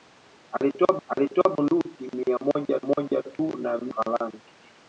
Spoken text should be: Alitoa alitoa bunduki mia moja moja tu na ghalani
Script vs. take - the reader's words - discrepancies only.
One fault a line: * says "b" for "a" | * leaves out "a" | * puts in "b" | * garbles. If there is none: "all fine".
all fine